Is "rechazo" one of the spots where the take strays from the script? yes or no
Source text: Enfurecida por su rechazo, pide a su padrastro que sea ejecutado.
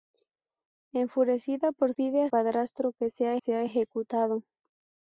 yes